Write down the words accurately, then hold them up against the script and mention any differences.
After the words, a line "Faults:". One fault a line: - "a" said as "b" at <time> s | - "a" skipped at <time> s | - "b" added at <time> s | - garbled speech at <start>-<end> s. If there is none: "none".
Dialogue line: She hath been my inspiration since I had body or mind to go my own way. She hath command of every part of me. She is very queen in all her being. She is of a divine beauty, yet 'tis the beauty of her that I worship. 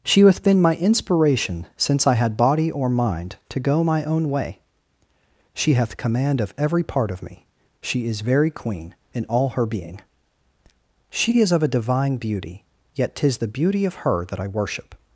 She hath been my inspiration since I had body or mind to go my own way. She hath command of every part of me. She is very queen in all her being. She is of a divine beauty, yet 'tis the beauty of her that I worship.
Faults:
none